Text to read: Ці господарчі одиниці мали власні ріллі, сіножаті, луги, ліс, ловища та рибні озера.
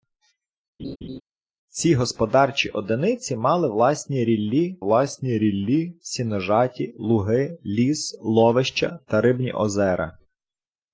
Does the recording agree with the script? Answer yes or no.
no